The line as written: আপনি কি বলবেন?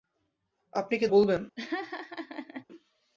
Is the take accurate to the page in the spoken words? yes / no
yes